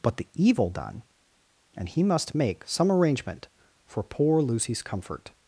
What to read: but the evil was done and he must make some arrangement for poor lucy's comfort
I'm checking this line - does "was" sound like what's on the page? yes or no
no